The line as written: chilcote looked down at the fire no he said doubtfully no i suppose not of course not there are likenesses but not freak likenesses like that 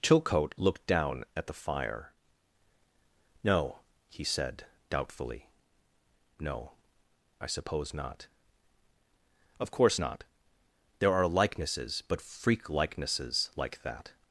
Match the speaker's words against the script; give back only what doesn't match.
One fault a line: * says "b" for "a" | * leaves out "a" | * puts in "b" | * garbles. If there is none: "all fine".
* leaves out "not"